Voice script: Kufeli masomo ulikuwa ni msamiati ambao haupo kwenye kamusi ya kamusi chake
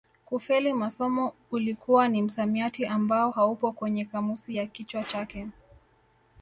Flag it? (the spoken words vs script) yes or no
yes